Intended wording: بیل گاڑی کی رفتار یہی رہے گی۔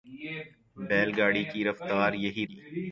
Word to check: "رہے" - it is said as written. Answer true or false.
false